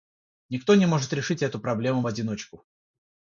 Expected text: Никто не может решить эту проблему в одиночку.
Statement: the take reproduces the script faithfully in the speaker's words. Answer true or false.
true